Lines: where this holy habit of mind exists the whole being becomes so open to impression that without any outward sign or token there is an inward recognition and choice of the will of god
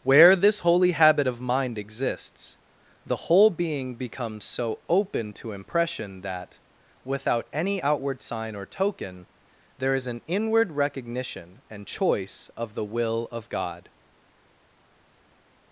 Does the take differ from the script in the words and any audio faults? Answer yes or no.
no